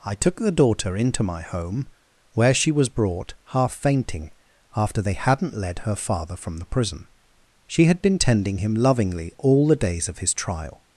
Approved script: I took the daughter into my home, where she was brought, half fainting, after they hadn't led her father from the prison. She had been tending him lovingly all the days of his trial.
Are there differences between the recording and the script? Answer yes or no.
no